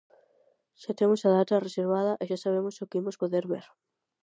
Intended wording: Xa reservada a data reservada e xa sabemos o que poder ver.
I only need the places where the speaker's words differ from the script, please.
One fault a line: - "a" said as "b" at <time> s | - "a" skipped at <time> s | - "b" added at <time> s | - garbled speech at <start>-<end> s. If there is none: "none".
- "reservada" said as "temos" at 1.0 s
- "imos" added at 3.0 s